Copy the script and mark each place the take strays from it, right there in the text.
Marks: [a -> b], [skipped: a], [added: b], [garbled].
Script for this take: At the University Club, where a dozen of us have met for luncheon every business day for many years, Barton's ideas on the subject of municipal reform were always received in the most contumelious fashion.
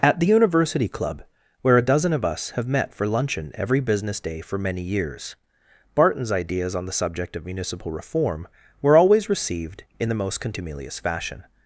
At the University Club, where a dozen of us have met for luncheon every business day for many years, Barton's ideas on the subject of municipal reform were always received in the most contumelious fashion.